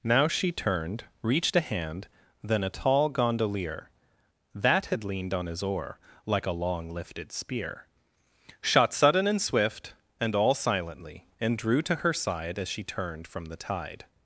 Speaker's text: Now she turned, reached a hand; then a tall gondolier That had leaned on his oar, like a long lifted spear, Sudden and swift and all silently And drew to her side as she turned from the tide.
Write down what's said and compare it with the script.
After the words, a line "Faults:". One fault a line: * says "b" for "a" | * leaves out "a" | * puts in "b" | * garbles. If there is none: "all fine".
Now she turned, reached a hand; then a tall gondolier That had leaned on his oar, like a long lifted spear, Shot sudden and swift and all silently And drew to her side as she turned from the tide.
Faults:
* puts in "Shot"